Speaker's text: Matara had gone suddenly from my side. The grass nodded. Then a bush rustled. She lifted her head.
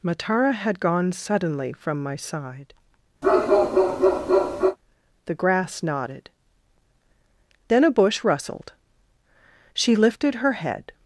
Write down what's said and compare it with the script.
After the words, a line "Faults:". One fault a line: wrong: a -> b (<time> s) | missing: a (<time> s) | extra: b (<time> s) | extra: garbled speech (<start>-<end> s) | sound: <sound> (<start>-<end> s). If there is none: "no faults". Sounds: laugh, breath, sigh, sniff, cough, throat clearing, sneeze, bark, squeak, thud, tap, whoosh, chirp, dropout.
Matara had gone suddenly from my side. The grass nodded. Then a bush rustled. She lifted her head.
Faults:
sound: bark (3.2-4.8 s)